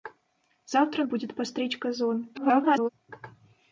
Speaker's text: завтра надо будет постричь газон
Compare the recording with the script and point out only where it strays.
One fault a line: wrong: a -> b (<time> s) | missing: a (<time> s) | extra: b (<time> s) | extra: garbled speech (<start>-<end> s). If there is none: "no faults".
missing: надо (1.0 s)
extra: garbled speech (2.3-2.9 s)